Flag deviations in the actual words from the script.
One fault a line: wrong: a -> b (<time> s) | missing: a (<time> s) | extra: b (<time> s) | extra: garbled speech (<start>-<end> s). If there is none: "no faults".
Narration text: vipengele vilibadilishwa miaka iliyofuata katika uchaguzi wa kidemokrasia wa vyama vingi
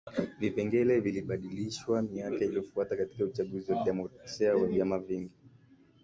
no faults